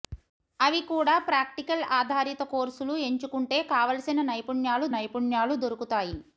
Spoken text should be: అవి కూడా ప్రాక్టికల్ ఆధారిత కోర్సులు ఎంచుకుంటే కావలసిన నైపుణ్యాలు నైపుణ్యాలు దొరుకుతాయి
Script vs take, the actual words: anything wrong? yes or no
no